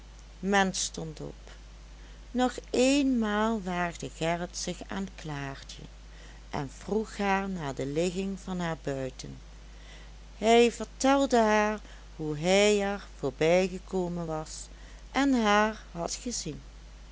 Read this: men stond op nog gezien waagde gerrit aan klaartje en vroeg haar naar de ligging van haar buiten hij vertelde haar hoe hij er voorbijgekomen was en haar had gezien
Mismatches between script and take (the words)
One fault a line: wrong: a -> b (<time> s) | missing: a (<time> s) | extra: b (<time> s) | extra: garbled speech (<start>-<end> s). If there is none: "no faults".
wrong: gezien -> eenmaal (2.7 s)
extra: zich (4.6 s)